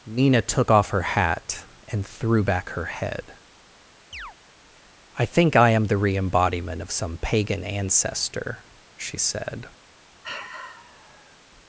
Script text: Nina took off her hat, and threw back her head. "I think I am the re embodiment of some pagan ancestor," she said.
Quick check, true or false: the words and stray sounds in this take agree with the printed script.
false